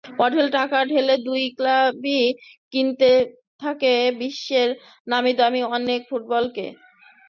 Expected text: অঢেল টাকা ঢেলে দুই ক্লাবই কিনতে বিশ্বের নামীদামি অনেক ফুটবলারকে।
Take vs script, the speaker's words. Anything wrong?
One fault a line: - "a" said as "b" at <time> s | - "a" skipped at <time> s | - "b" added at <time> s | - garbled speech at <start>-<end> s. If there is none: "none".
- "থাকে" added at 3.6 s